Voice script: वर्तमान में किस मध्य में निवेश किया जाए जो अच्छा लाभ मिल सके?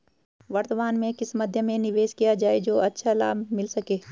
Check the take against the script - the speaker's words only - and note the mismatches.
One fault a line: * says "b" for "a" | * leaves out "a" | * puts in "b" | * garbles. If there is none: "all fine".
all fine